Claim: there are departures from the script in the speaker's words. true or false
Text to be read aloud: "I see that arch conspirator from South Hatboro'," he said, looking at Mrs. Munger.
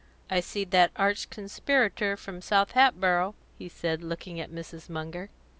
false